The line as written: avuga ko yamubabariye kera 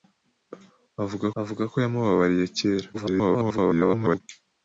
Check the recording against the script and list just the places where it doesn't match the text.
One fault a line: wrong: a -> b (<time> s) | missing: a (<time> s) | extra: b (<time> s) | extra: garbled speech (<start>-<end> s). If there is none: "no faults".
extra: avuga (1.4 s)
extra: garbled speech (2.9-4.2 s)